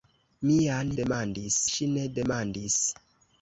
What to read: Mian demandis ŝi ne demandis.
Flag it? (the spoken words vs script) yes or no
no